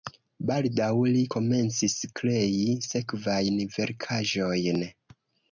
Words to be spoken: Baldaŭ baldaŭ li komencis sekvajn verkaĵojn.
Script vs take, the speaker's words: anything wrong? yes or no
yes